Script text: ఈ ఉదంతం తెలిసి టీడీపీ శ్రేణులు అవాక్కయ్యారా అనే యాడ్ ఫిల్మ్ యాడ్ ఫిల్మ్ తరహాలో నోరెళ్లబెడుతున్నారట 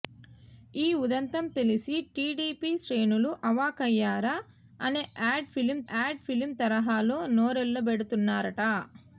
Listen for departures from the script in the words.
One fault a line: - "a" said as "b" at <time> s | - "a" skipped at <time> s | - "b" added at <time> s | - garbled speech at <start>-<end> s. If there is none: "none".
none